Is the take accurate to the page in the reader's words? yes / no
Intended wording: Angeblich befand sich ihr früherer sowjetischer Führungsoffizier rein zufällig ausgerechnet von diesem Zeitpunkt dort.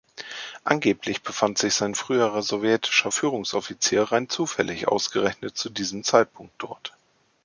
no